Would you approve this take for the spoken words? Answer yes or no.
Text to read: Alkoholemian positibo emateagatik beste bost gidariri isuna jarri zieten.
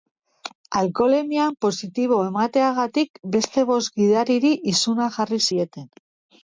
yes